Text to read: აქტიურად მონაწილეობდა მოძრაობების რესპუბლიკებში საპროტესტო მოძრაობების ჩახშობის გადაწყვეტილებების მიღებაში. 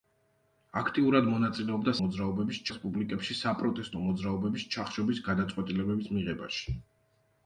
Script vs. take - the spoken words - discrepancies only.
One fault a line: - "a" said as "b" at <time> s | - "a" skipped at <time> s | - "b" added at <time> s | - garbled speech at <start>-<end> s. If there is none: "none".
none